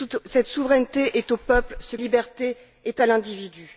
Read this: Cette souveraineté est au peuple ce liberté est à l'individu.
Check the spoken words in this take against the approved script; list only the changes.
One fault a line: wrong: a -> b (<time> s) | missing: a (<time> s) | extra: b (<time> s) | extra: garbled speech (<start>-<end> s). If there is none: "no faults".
no faults